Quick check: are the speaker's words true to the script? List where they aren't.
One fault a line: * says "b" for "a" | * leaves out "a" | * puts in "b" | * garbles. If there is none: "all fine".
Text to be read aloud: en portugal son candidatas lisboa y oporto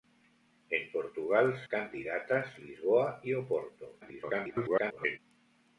* leaves out "son"
* garbles